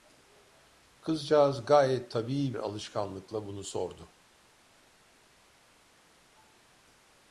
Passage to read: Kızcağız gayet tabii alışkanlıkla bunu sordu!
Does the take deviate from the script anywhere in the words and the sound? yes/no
no